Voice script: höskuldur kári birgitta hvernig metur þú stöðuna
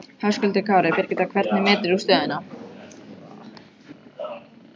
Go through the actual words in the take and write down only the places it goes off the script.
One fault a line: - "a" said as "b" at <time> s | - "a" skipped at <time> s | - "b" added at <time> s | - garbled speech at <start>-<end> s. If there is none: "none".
none